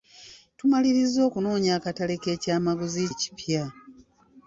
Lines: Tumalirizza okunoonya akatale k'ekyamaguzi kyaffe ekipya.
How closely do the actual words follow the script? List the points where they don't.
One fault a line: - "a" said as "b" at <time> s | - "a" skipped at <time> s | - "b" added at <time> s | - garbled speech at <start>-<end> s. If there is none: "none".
- "kyaffe" skipped at 3.0 s